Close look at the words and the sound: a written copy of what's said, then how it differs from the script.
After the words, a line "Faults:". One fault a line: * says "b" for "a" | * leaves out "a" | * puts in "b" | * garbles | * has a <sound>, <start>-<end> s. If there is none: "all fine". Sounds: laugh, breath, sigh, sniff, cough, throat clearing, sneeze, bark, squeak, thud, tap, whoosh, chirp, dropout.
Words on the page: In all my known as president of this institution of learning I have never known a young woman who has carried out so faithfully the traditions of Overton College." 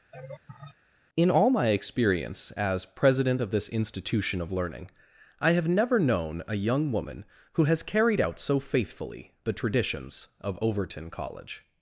In all my experience as president of this institution of learning I have never known a young woman who has carried out so faithfully the traditions of Overton College."
Faults:
* has a laugh, 0.1-0.8 s
* says "experience" for "known"